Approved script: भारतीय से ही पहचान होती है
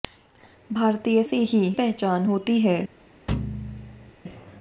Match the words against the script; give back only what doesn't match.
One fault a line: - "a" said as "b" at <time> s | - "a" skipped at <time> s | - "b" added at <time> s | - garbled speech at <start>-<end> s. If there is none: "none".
none